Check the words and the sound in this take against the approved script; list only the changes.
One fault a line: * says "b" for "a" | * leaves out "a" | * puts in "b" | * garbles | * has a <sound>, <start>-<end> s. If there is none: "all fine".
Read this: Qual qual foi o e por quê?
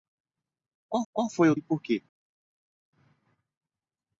all fine